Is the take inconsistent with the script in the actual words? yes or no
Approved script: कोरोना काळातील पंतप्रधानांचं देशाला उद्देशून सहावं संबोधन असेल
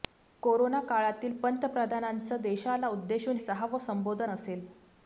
no